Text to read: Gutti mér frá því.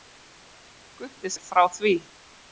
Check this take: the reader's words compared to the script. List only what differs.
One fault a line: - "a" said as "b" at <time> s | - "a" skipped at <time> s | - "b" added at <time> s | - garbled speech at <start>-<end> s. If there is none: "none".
none